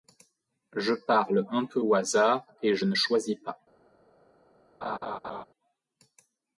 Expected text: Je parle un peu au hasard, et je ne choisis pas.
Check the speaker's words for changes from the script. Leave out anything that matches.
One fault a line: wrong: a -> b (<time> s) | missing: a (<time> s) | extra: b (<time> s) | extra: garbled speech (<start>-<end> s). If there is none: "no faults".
no faults